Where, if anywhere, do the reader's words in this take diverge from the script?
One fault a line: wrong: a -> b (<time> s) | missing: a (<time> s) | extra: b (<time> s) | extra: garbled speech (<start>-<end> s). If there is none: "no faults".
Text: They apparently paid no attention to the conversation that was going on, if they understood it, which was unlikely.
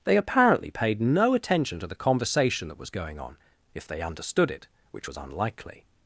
no faults